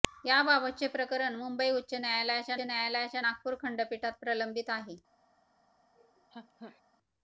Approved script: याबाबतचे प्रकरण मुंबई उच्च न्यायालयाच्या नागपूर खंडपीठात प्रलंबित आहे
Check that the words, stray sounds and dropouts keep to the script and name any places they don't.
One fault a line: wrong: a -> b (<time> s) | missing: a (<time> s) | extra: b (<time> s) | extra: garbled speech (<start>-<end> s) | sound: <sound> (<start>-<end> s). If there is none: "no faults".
extra: न्यायालयाच्या (2.6 s)
sound: laugh (5.9-6.8 s)